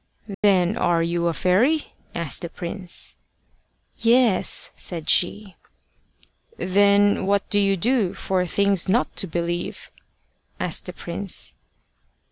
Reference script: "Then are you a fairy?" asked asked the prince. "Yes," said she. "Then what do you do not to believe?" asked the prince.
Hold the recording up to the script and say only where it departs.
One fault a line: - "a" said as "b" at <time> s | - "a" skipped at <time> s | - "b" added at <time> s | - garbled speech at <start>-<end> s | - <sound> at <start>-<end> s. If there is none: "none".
- dropout at 0.3-0.4 s
- "asked" skipped at 2.4 s
- "for things" added at 8.1 s